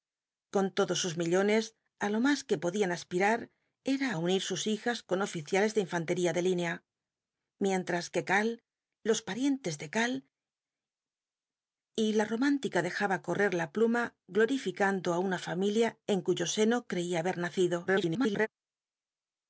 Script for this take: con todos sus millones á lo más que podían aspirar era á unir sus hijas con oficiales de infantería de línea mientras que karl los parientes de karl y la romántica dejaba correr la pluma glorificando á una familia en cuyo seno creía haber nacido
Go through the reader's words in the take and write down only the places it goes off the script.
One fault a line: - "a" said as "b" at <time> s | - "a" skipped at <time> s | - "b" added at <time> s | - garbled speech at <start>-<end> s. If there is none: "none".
- garbled speech at 17.9-18.5 s